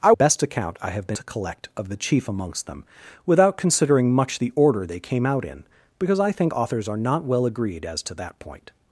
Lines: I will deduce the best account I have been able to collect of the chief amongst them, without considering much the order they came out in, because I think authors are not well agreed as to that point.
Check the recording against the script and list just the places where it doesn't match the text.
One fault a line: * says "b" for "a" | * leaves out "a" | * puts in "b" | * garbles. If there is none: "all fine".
* leaves out "will deduce the"
* leaves out "able"